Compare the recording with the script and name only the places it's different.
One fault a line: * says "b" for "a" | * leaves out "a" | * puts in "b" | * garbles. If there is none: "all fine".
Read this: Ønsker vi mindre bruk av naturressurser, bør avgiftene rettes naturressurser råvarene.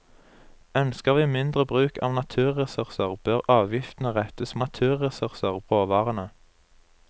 all fine